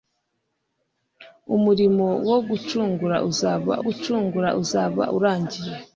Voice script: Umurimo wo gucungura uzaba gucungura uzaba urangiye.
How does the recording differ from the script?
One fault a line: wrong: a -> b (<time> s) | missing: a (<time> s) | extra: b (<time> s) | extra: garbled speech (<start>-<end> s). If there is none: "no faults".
no faults